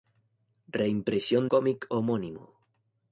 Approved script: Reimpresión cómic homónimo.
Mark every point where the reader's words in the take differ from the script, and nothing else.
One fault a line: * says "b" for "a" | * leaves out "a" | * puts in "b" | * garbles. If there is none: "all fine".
all fine